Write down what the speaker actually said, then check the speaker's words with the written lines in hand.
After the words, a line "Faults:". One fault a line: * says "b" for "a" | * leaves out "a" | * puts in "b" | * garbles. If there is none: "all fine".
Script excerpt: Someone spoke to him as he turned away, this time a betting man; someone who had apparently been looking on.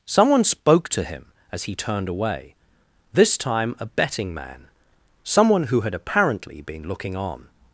Someone spoke to him as he turned away, this time a betting man; someone who had apparently been looking on.
Faults:
all fine